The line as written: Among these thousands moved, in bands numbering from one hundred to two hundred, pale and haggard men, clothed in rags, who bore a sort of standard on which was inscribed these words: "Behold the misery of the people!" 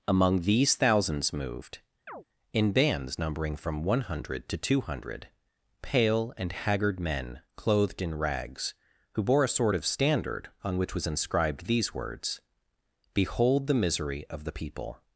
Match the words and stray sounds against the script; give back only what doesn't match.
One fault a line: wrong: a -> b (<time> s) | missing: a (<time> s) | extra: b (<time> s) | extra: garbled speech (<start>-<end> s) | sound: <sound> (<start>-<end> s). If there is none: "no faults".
sound: chirp (2.1-2.2 s)